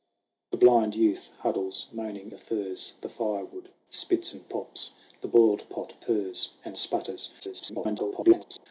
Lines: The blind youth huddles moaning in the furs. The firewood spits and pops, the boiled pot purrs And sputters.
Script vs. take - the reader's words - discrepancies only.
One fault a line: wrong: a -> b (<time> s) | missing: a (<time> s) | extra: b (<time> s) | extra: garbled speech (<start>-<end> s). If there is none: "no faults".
missing: in (2.3 s)
extra: garbled speech (7.4-8.7 s)